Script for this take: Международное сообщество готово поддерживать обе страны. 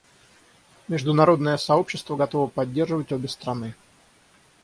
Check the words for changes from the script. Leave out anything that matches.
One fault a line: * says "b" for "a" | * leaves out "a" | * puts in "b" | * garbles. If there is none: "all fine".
all fine